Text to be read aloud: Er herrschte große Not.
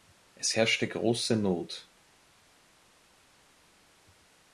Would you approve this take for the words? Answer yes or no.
no